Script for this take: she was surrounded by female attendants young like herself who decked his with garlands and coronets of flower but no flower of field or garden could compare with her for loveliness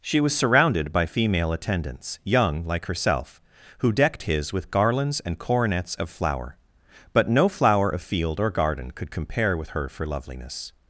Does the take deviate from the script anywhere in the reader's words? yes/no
no